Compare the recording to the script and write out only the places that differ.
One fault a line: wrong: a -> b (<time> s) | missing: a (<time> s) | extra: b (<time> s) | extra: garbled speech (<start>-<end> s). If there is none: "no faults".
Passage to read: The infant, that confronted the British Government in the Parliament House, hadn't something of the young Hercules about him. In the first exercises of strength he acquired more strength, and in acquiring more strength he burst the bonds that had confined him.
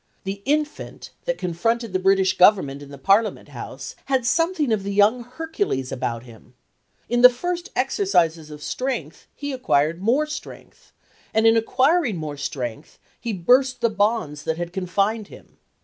wrong: hadn't -> had (4.1 s)